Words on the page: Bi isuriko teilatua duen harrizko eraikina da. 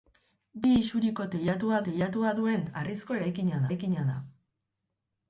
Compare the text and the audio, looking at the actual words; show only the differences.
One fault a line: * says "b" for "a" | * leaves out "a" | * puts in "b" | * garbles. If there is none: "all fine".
* puts in "teilatua"
* puts in "eraikina"